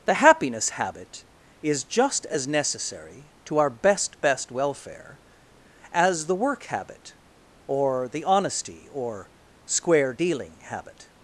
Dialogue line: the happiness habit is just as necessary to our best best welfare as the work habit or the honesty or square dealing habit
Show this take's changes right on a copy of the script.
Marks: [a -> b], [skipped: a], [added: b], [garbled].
the happiness habit is just as necessary to our best best welfare as the work habit or the honesty or square dealing habit